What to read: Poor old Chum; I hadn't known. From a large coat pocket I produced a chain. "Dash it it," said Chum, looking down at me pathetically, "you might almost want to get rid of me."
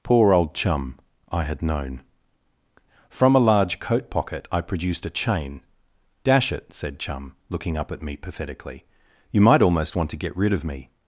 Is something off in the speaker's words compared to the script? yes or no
yes